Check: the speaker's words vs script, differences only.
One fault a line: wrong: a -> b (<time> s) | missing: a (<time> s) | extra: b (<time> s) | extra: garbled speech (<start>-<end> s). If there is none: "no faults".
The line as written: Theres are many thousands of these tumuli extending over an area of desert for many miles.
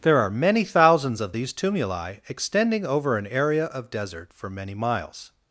wrong: Theres -> There (0.0 s)